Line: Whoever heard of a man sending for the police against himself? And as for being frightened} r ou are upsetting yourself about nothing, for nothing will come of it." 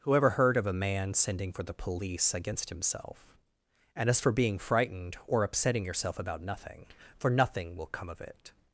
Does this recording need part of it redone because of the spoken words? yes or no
yes